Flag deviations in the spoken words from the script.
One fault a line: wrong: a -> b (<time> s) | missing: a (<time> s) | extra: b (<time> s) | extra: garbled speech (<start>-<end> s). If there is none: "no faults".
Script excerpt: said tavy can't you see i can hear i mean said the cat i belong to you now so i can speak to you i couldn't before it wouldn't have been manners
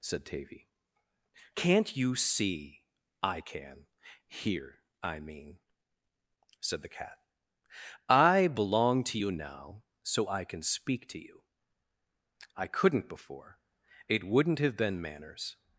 no faults